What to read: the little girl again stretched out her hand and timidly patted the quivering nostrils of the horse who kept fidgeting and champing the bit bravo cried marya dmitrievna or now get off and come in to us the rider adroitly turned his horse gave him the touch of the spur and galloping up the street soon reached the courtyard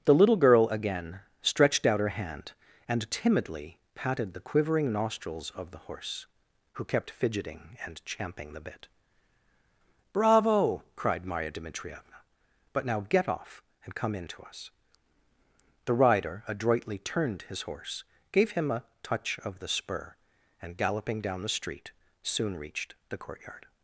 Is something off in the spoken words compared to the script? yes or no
yes